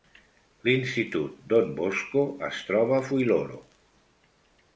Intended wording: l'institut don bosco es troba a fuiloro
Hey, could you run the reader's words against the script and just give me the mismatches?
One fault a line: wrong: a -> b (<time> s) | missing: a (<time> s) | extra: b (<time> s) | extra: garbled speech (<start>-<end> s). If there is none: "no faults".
no faults